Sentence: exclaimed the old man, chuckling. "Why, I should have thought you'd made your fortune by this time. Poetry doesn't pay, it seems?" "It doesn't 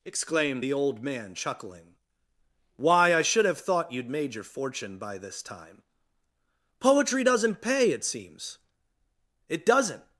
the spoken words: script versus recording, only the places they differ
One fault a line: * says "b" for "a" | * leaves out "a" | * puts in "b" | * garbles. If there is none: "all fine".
all fine